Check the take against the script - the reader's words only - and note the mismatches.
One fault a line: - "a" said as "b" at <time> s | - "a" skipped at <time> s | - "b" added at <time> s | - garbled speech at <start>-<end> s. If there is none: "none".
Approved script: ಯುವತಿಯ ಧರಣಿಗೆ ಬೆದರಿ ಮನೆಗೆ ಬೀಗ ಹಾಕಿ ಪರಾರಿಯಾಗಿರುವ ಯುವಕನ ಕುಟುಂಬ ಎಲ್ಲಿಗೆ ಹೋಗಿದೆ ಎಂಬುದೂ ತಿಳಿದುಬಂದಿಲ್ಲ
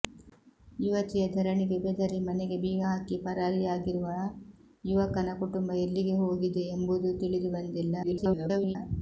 - garbled speech at 8.0-8.8 s